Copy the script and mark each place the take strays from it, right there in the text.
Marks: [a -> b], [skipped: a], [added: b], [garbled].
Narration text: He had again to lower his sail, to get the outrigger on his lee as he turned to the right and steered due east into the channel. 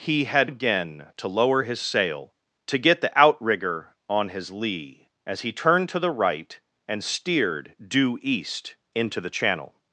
He had again to lower his sail, to get the outrigger on his lee as he turned to the right and steered due east into the channel.